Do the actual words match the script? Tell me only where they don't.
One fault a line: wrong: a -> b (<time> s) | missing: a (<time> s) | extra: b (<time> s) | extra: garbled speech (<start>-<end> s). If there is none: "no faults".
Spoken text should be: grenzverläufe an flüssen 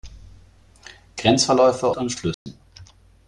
no faults